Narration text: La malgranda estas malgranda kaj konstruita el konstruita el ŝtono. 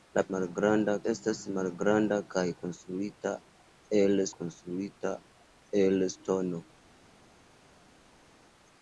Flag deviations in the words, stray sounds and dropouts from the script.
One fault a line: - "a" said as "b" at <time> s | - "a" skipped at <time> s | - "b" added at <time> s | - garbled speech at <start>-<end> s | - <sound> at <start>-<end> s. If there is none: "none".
none